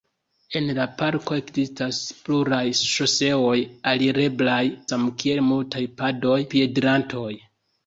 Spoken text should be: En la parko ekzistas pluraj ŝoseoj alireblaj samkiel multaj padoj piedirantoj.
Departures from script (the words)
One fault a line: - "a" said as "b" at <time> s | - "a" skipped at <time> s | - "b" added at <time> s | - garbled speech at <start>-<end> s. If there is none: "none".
none